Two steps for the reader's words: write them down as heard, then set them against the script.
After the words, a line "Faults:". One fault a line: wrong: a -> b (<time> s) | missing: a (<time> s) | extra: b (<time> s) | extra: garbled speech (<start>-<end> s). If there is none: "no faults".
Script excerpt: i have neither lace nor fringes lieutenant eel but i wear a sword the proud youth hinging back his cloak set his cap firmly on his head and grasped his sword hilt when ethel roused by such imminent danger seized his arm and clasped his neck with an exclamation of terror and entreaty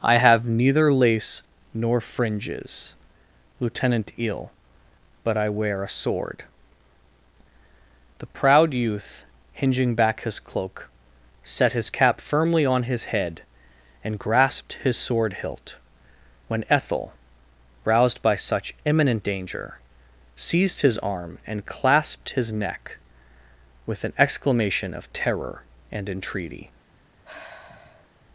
i have neither lace nor fringes lieutenant eel but i wear a sword the proud youth hinging back his cloak set his cap firmly on his head and grasped his sword hilt when ethel roused by such imminent danger seized his arm and clasped his neck with an exclamation of terror and entreaty
Faults:
no faults